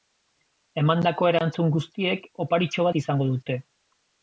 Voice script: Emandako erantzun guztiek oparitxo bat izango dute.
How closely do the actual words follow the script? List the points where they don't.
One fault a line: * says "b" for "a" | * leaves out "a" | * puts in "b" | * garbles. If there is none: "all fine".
all fine